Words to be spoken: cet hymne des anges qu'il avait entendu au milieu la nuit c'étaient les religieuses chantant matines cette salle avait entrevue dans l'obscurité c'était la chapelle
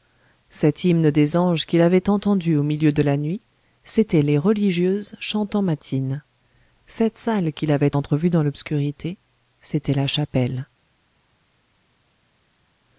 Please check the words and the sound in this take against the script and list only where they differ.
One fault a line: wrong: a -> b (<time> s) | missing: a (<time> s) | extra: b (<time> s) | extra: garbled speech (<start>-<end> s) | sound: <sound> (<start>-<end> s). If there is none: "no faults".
extra: de (2.9 s)
extra: qu'il (7.5 s)